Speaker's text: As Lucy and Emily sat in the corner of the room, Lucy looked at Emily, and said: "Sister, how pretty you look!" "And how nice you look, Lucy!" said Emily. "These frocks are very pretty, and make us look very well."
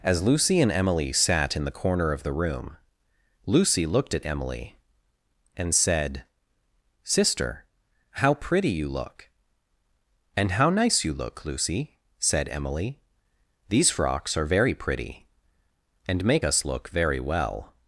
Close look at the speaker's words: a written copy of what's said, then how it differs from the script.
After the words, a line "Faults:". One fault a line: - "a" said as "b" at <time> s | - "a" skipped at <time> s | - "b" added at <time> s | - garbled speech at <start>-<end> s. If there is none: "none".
As Lucy and Emily sat in the corner of the room, Lucy looked at Emily, and said: "Sister, how pretty you look!" "And how nice you look, Lucy!" said Emily. "These frocks are very pretty, and make us look very well."
Faults:
none